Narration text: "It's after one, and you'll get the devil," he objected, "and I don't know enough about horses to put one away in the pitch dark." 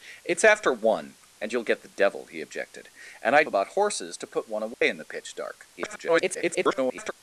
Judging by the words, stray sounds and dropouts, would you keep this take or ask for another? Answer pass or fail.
fail